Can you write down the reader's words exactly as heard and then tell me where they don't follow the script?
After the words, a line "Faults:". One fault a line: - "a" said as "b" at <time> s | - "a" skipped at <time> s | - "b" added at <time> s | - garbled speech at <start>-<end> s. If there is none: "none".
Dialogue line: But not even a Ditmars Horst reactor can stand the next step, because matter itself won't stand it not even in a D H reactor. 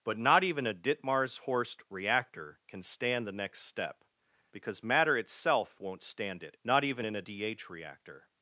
But not even a Ditmars Horst reactor can stand the next step, because matter itself won't stand it not even in a D H reactor.
Faults:
none